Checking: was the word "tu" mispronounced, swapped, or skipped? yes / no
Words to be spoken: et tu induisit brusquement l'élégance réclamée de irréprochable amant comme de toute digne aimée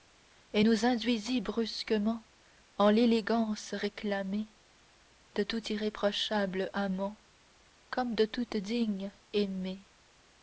yes